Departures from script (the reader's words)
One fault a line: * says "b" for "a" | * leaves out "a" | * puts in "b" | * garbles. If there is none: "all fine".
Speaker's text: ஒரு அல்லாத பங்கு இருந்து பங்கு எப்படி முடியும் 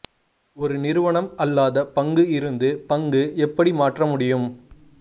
* puts in "நிறுவனம்"
* puts in "மாற்ற"